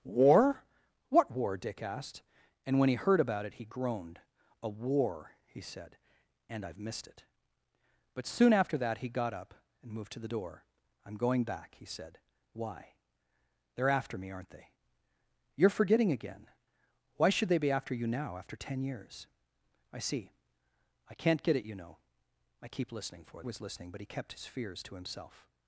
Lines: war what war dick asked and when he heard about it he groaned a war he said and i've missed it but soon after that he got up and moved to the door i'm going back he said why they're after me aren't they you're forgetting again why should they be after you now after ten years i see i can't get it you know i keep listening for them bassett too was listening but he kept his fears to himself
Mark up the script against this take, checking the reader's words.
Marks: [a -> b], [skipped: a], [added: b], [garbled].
war what war dick asked and when he heard about it he groaned a war he said and i've missed it but soon after that he got up and moved to the door i'm going back he said why they're after me aren't they you're forgetting again why should they be after you now after ten years i see i can't get it you know i keep listening for [skipped: them bassett too] was listening but he kept his fears to himself